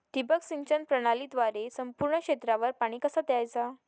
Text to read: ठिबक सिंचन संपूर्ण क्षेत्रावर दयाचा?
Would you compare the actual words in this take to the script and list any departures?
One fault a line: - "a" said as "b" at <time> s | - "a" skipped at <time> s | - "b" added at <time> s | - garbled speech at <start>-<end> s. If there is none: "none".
- "प्रणालीद्वारे" added at 0.8 s
- "पाणी कसा" added at 2.7 s